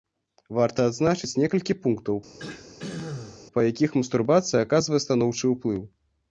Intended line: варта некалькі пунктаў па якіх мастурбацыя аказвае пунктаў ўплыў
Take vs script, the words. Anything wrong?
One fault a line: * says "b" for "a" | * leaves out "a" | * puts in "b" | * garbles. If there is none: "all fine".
* puts in "адзначыць"
* says "станоўчы" for "пунктаў"